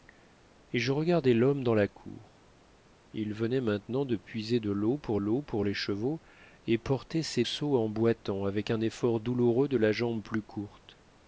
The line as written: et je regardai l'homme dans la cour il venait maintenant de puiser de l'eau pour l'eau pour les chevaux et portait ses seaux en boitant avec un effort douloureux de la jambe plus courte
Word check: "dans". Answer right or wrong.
right